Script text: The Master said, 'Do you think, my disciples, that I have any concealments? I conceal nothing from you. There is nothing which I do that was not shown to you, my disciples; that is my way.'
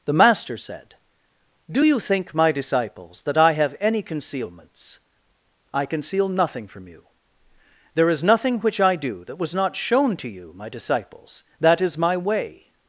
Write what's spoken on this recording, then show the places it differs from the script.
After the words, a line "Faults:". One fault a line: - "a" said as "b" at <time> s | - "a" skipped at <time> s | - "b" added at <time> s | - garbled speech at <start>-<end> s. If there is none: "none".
The Master said, 'Do you think, my disciples, that I have any concealments? I conceal nothing from you. There is nothing which I do that was not shown to you, my disciples; that is my way.'
Faults:
none